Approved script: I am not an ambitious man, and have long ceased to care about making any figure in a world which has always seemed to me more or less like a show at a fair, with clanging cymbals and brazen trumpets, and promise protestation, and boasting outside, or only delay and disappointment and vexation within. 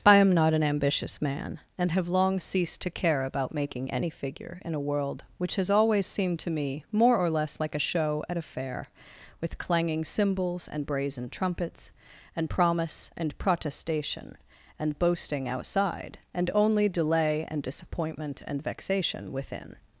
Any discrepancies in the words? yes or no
yes